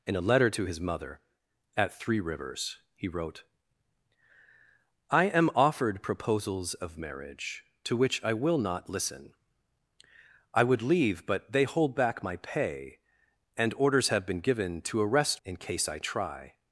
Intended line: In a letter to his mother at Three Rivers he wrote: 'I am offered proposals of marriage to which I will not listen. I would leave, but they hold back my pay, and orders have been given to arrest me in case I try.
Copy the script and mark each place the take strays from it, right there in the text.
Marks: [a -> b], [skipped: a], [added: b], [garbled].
In a letter to his mother at Three Rivers he wrote: 'I am offered proposals of marriage to which I will not listen. I would leave, but they hold back my pay, and orders have been given to arrest [skipped: me] in case I try.